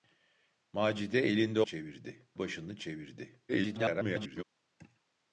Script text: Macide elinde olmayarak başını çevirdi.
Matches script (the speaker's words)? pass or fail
fail